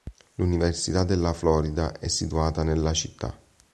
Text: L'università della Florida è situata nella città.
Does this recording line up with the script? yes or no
yes